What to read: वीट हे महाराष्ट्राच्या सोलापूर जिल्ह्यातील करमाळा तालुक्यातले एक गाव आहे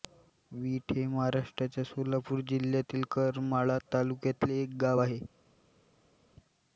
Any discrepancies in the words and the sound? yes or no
no